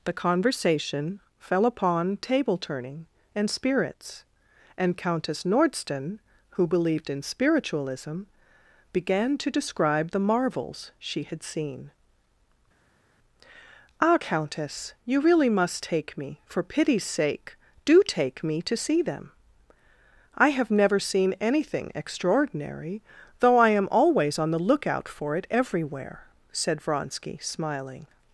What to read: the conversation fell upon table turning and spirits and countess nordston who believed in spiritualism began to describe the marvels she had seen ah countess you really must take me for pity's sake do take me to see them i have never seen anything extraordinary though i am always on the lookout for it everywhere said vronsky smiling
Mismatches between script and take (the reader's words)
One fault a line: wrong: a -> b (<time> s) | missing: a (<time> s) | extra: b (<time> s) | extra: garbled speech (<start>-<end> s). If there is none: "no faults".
no faults